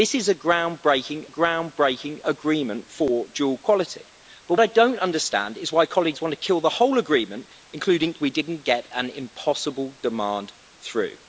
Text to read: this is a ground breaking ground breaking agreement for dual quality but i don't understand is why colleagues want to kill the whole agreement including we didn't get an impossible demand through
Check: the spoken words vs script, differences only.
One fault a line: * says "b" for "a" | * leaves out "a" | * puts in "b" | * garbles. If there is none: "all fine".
all fine